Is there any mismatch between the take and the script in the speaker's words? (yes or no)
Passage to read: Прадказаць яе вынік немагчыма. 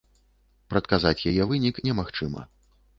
no